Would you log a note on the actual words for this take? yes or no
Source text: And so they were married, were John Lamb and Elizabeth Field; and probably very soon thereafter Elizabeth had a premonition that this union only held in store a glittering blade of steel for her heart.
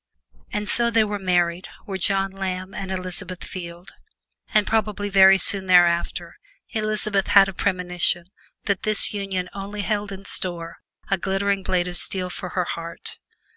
no